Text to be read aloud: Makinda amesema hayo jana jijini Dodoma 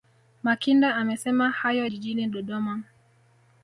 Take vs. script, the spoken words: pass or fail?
fail